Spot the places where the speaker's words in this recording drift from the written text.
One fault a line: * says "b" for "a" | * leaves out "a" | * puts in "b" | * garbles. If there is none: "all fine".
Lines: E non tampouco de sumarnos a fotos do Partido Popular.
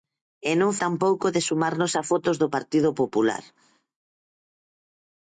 all fine